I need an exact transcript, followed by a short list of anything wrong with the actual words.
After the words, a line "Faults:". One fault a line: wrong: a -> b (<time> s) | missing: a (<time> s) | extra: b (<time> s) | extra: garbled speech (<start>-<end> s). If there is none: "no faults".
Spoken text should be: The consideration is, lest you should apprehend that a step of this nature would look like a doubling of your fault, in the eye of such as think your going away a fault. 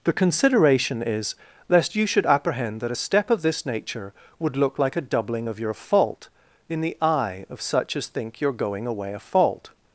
The consideration is, lest you should apprehend that a step of this nature would look like a doubling of your fault, in the eye of such as think your going away a fault.
Faults:
no faults